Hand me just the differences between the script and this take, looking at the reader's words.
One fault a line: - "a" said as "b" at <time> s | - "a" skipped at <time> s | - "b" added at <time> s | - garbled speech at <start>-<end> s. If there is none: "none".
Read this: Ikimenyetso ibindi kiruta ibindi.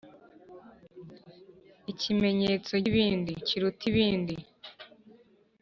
none